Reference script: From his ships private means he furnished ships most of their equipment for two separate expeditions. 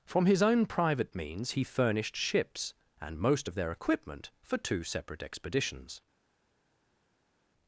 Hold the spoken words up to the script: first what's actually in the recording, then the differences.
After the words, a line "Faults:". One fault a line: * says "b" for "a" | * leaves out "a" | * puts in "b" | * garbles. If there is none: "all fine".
From his own private means he furnished ships and most of their equipment for two separate expeditions.
Faults:
* says "own" for "ships"
* puts in "and"